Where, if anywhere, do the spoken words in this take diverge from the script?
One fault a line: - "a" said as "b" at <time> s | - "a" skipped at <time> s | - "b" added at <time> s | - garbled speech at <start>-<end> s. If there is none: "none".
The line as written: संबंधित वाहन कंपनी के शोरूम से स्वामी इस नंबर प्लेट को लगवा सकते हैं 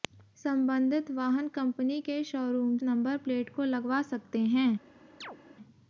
- "से स्वामी इस" skipped at 2.8 s